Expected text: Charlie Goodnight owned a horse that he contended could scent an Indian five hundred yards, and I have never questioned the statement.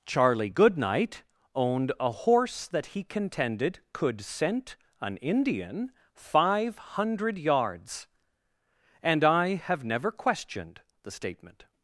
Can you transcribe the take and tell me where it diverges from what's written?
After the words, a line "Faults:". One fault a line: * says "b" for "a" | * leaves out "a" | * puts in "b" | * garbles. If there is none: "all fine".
Charlie Goodnight owned a horse that he contended could scent an Indian five hundred yards, and I have never questioned the statement.
Faults:
all fine